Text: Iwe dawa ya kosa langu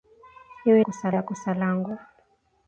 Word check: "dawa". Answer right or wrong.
wrong